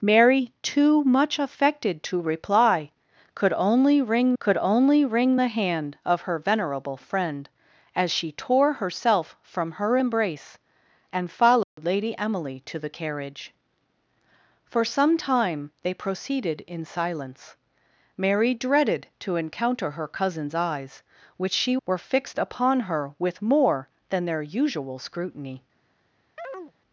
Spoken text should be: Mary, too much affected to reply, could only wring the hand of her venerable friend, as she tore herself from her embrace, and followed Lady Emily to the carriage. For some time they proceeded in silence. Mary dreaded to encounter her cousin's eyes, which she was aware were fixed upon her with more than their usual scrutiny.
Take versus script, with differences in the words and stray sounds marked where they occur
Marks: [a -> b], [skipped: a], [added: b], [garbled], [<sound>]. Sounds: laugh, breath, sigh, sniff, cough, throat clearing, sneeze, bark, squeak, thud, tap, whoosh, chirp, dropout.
Mary, too much affected to reply, could only wring [added: could only wring] the hand of her venerable friend, as she tore herself from her embrace, and followed [dropout] Lady Emily to the carriage. For some time they proceeded in silence. Mary dreaded to encounter her cousin's eyes, which she [skipped: was aware] were fixed upon her with more than their usual scrutiny. [chirp]